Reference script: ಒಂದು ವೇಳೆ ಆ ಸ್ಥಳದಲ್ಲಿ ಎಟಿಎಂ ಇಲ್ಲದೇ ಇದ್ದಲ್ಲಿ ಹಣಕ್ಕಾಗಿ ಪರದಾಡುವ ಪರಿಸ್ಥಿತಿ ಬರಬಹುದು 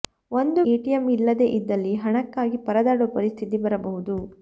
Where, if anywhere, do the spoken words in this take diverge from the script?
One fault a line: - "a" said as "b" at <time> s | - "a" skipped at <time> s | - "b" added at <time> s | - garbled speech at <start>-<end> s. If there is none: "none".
- "ವೇಳೆ ಆ ಸ್ಥಳದಲ್ಲಿ" skipped at 0.6 s